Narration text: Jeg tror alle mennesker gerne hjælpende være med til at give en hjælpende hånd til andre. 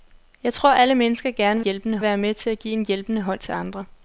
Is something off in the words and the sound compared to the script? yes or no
no